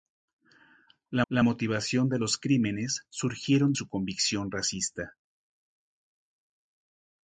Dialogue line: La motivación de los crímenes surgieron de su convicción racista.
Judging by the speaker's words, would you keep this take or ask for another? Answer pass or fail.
fail